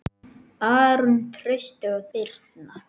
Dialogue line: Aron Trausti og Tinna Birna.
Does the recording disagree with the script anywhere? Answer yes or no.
yes